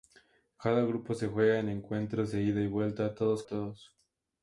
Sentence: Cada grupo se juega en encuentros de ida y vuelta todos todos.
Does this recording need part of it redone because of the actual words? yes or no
no